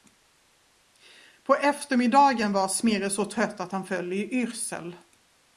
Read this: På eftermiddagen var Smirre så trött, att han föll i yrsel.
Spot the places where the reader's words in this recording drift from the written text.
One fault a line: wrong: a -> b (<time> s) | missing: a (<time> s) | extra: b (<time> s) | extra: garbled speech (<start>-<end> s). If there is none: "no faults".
no faults